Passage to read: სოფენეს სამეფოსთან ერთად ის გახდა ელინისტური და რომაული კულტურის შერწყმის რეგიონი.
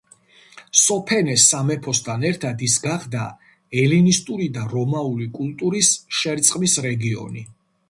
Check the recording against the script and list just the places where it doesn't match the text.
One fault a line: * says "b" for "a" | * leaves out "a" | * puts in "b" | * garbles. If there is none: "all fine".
all fine